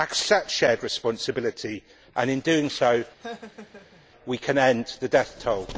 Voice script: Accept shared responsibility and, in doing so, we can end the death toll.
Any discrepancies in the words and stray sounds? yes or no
yes